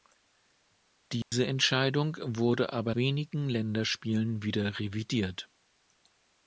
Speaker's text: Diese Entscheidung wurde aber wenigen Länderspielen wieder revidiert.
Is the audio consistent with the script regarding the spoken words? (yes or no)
yes